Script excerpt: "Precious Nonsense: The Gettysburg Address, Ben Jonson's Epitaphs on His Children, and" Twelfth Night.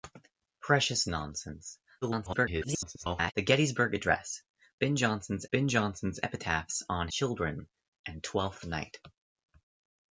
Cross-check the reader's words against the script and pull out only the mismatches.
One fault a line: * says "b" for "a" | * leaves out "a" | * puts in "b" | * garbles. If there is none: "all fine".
* garbles
* puts in "Ben Jonson's"
* leaves out "His"